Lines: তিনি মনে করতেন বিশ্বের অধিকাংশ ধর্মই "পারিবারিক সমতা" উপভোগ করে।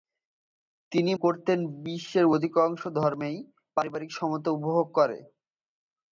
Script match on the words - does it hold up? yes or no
no